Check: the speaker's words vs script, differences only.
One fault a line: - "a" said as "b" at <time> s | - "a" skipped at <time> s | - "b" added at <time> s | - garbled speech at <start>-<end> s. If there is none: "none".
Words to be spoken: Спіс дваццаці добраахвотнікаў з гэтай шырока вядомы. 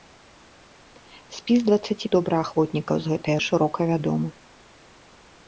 none